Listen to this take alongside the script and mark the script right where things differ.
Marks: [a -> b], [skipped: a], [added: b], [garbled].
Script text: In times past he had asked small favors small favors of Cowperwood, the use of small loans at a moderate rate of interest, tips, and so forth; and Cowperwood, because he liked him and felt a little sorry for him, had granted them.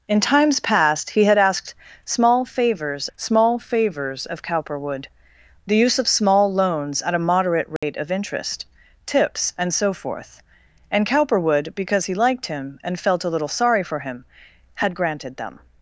In times past he had asked small favors small favors of Cowperwood, the use of small loans at a moderate rate of interest, tips, and so forth; and Cowperwood, because he liked him and felt a little sorry for him, had granted them.